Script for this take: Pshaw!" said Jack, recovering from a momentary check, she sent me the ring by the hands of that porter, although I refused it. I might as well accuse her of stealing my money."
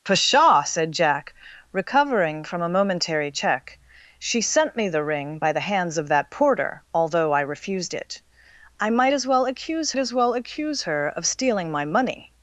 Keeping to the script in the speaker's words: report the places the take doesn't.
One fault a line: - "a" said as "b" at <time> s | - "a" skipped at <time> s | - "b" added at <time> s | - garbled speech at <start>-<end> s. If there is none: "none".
- "as well accuse" added at 10.0 s